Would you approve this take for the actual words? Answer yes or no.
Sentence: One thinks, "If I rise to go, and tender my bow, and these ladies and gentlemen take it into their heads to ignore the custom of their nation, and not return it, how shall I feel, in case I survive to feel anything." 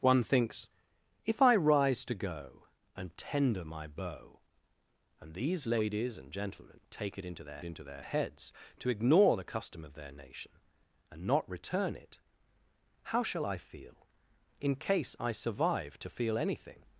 no